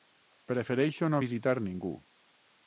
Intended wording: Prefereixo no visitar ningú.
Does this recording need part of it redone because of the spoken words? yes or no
no